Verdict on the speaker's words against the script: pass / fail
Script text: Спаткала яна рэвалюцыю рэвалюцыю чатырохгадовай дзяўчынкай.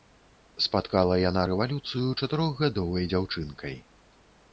fail